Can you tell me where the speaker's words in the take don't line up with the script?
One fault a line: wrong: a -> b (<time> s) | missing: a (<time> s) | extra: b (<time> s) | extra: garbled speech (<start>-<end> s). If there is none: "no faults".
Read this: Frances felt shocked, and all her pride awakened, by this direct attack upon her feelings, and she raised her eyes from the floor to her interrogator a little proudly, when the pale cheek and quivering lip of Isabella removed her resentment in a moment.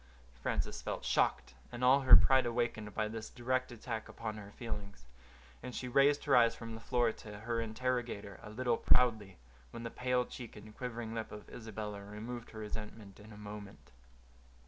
no faults